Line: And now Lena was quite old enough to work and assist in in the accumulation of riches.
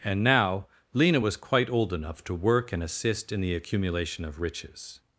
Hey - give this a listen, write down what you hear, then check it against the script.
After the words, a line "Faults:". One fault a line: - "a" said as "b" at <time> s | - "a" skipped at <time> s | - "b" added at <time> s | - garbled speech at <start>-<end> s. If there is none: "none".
And now Lena was quite old enough to work and assist in the accumulation of riches.
Faults:
- "in" skipped at 3.4 s